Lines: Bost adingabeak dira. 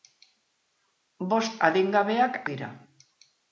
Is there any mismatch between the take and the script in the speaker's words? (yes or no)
no